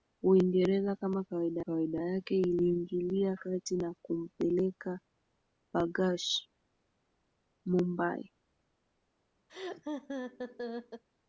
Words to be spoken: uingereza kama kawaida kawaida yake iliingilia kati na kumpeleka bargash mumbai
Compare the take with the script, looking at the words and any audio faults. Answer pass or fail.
fail